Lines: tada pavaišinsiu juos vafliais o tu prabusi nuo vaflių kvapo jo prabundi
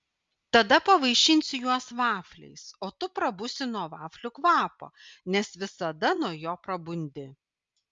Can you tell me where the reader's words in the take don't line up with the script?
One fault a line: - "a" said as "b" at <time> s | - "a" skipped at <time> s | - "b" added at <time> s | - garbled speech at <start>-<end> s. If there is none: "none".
- "nes visada nuo" added at 5.4 s